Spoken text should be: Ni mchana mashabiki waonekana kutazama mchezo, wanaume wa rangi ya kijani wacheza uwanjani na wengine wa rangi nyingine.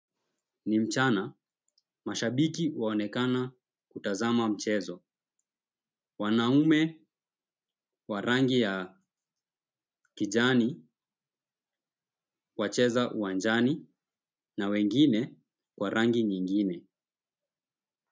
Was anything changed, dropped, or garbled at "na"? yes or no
no